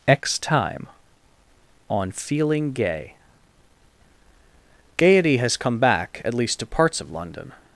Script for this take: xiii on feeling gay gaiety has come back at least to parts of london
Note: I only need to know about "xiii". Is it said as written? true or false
false